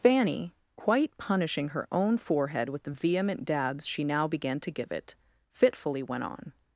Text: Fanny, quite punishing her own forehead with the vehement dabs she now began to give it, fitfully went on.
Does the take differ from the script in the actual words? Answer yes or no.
no